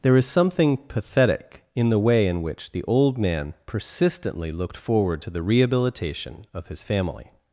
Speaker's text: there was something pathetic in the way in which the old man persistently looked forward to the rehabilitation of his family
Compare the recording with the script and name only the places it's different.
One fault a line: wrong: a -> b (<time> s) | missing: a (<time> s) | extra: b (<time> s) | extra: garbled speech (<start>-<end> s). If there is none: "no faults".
wrong: was -> is (0.2 s)